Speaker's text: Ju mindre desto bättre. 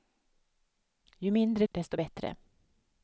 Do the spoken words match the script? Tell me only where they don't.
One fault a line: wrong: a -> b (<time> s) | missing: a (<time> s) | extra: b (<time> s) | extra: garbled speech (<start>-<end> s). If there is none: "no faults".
no faults